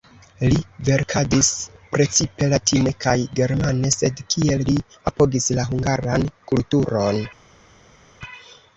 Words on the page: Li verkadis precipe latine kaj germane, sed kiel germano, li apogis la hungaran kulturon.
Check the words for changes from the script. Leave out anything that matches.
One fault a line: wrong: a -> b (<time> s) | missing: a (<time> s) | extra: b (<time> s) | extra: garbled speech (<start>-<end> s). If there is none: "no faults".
missing: germano (4.7 s)